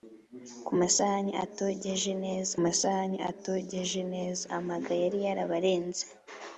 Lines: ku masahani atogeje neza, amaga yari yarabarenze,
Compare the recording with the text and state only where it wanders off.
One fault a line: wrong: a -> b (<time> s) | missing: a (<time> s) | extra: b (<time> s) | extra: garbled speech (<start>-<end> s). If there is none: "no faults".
extra: masahani atogeje neza (2.6 s)